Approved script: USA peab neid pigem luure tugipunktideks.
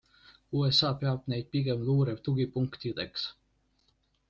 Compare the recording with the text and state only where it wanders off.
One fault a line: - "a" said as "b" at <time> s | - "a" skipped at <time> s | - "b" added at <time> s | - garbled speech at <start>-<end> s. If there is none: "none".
none